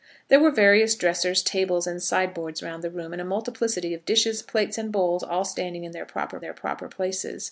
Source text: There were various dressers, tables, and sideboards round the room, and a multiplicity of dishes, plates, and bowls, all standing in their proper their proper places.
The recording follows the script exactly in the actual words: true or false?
true